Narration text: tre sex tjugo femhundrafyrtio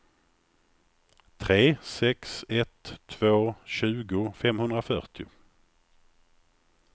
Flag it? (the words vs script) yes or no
yes